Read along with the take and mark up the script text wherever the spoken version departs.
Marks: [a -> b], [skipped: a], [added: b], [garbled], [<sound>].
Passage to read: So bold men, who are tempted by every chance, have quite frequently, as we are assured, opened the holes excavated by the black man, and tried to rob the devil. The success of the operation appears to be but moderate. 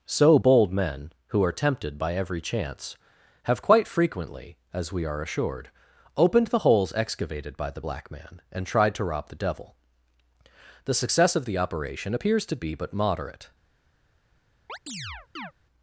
So bold men, who are tempted by every chance, have quite frequently, as we are assured, opened the holes excavated by the black man, and tried to rob the devil. The success of the operation appears to be but moderate. [chirp]